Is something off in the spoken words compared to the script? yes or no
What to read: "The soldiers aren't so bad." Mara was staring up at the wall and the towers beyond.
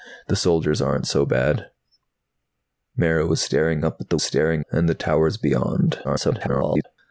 yes